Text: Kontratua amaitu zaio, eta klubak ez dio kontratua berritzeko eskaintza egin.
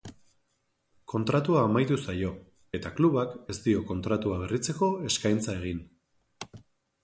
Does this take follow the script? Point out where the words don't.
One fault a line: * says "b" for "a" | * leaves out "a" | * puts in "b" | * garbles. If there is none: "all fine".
all fine